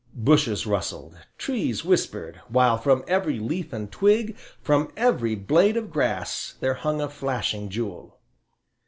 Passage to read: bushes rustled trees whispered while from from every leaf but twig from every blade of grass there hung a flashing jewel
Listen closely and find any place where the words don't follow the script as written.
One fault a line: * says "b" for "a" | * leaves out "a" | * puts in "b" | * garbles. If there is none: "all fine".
* leaves out "from"
* says "and" for "but"